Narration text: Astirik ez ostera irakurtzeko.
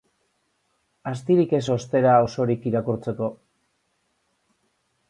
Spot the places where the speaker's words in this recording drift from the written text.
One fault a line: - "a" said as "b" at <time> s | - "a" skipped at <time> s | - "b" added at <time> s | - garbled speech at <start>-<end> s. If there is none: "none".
- "osorik" added at 2.3 s